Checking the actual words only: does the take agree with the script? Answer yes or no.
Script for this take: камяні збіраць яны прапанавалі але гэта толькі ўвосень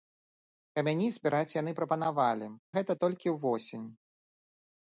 no